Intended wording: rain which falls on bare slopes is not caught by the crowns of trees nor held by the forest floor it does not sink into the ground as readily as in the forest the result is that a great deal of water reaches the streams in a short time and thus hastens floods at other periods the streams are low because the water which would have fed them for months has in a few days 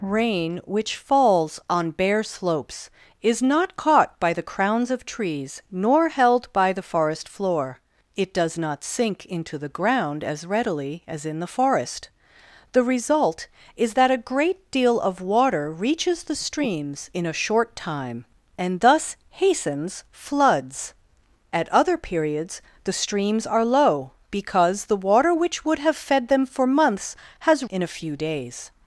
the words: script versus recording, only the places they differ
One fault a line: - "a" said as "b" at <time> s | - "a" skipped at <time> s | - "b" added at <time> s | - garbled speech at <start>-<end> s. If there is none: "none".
none